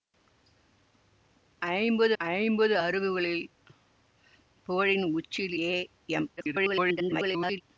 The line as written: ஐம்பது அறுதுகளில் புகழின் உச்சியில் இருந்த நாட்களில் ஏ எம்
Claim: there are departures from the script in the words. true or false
true